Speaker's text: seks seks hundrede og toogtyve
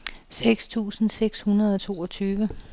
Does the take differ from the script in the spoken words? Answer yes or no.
yes